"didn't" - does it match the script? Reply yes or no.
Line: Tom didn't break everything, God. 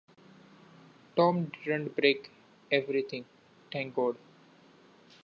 yes